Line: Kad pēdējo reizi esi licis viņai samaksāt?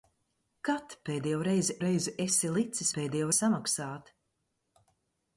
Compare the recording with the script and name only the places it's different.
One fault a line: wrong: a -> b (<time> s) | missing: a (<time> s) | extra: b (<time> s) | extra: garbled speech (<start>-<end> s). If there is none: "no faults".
extra: reizi (1.8 s)
wrong: viņai -> pēdējo (3.0 s)